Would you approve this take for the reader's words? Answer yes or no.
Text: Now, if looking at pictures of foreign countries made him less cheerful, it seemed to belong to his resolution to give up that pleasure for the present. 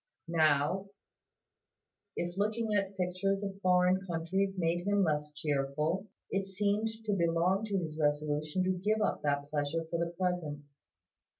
yes